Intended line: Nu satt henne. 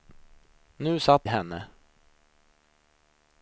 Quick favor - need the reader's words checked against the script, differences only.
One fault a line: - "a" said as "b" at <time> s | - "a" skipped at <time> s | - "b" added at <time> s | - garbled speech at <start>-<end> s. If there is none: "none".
none